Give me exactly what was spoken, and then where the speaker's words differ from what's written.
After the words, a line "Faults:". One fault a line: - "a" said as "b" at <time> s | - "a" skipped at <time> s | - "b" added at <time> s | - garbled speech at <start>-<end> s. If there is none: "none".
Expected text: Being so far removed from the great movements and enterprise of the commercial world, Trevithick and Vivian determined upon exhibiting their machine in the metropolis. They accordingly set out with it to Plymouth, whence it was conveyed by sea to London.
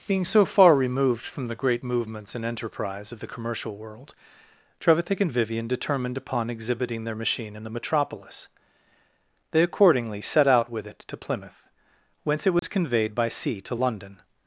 Being so far removed from the great movements and enterprise of the commercial world, Trevithick and Vivian determined upon exhibiting their machine in the metropolis. They accordingly set out with it to Plymouth, whence it was conveyed by sea to London.
Faults:
none